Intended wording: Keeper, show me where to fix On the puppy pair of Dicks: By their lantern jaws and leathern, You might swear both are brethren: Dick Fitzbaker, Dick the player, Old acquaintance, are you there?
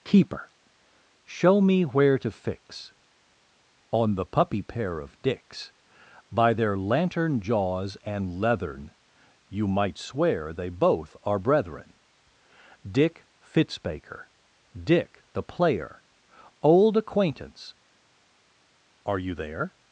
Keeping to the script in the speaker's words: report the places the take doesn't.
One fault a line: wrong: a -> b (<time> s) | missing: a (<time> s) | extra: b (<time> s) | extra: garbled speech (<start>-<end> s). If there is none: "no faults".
extra: they (10.5 s)